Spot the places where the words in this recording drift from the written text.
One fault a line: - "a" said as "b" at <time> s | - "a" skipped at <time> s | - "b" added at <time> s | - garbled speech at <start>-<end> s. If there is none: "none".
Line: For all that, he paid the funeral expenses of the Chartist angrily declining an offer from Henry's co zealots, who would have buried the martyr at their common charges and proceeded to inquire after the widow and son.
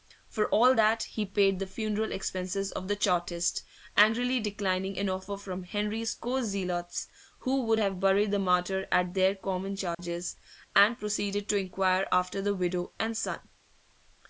none